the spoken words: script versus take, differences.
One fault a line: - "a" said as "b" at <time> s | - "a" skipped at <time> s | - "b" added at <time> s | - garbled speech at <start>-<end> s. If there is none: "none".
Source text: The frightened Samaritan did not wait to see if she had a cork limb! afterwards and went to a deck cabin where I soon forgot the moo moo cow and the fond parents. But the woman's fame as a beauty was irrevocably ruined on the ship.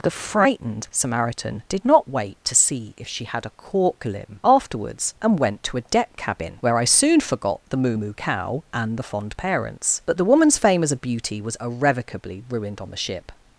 none